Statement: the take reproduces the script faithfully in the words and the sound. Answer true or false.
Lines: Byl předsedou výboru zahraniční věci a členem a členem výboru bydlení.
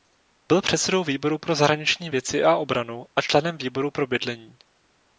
false